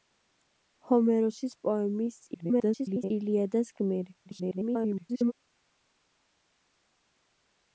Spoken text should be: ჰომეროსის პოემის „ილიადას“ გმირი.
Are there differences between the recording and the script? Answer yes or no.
yes